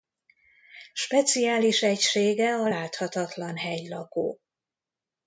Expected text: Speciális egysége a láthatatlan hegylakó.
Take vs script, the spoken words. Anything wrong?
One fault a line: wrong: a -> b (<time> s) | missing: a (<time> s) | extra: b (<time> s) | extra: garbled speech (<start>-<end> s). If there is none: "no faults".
no faults